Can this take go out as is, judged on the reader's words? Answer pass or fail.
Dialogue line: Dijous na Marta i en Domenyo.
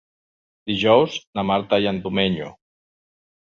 pass